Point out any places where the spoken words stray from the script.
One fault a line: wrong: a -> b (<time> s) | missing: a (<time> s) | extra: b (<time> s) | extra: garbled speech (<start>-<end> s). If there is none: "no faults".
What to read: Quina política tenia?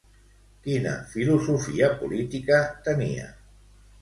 extra: filosofia (1.1 s)